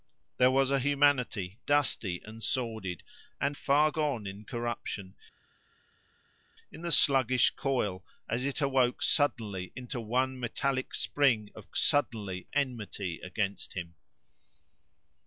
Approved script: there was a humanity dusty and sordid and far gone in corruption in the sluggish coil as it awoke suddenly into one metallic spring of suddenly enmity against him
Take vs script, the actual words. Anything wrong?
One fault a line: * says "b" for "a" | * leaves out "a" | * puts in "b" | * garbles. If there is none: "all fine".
all fine